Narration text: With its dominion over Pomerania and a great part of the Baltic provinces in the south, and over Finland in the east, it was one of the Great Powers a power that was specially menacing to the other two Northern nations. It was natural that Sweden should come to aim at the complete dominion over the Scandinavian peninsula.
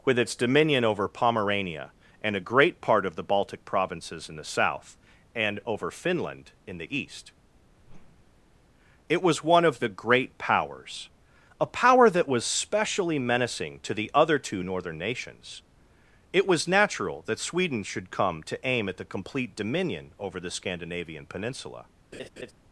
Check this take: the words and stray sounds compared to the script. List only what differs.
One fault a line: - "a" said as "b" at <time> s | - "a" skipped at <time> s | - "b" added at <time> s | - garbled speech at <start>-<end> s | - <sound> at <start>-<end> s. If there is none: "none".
- whoosh at 7.8-8.6 s
- laugh at 22.1-22.5 s